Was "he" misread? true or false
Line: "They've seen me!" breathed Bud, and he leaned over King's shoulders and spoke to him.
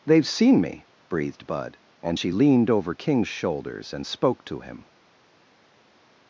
true